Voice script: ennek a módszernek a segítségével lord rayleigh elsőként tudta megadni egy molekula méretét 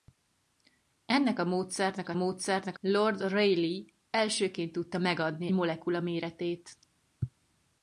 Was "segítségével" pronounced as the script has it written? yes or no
no